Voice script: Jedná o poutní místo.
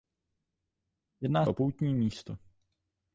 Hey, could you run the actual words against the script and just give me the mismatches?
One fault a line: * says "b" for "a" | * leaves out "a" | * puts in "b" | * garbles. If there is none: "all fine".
all fine